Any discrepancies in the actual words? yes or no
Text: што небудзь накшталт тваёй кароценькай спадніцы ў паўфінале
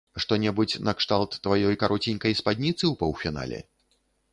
no